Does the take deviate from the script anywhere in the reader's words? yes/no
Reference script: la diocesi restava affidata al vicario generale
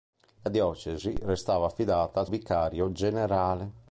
no